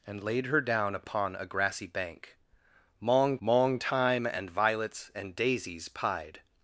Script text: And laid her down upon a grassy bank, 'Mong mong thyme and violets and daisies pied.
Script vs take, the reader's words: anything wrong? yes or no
no